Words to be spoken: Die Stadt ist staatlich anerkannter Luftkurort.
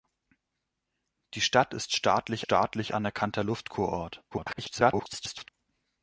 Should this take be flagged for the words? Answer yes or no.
yes